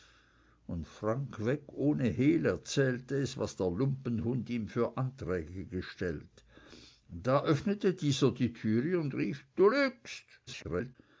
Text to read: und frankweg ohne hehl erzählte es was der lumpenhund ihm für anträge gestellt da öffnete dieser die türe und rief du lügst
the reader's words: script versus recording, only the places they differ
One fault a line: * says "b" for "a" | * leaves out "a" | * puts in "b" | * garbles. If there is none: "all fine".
* garbles